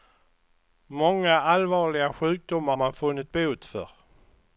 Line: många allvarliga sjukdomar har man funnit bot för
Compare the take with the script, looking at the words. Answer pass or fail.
fail